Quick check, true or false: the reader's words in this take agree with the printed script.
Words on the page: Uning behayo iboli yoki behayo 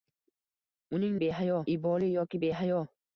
true